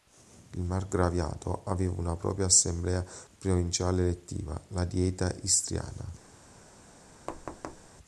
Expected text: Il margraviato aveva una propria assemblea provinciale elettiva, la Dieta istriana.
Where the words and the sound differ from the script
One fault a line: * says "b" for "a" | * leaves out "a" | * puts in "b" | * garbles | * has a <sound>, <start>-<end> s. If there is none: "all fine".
* has a thud, 7.3-7.9 s